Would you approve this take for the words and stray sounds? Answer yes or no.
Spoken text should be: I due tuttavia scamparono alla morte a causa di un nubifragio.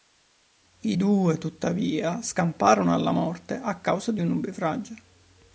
yes